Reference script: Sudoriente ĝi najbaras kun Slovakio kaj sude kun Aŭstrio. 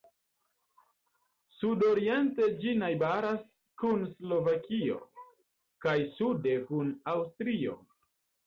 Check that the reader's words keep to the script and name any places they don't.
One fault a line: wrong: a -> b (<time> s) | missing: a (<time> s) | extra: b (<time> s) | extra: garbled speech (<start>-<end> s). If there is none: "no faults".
no faults